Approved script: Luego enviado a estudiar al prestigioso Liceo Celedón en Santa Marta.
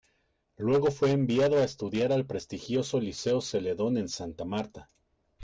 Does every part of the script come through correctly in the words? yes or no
no